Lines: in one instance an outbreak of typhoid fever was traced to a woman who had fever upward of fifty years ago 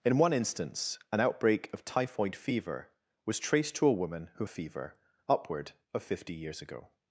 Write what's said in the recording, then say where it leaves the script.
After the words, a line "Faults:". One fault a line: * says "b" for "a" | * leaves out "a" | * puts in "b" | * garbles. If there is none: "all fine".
in one instance an outbreak of typhoid fever was traced to a woman who fever upward of fifty years ago
Faults:
* leaves out "had"